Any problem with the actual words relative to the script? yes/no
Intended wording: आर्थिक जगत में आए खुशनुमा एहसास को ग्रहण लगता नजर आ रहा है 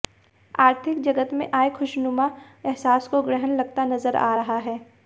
no